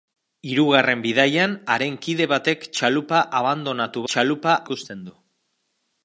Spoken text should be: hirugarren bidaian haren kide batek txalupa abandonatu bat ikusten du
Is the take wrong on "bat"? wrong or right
wrong